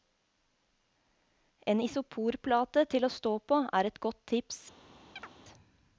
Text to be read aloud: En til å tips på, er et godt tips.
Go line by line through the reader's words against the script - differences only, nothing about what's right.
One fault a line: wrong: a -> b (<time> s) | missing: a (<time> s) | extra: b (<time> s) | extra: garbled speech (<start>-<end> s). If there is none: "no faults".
extra: isoporplate (1.8 s)
wrong: tips -> stå (3.1 s)